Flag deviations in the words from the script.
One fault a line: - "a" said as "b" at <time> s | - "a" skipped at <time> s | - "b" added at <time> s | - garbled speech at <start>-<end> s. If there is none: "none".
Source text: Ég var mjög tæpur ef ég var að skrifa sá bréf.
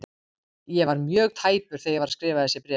- "ef" said as "þegar" at 1.8 s
- "sá" said as "þessi" at 2.5 s